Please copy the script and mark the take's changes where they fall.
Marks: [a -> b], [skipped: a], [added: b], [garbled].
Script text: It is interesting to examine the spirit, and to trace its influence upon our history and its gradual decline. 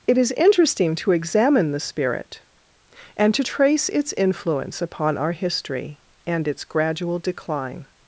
It is interesting to examine the spirit, and to trace its influence upon our history and its gradual decline.